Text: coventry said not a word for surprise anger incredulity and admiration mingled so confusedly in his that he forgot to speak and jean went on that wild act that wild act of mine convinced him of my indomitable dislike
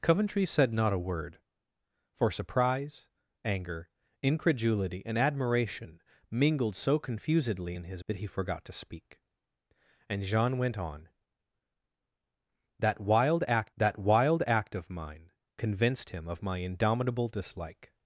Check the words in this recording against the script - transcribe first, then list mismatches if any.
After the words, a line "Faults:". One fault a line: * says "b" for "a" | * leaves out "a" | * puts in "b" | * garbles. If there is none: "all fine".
coventry said not a word for surprise anger incredulity and admiration mingled so confusedly in his that he forgot to speak and jean went on that wild act that wild act of mine convinced him of my indomitable dislike
Faults:
all fine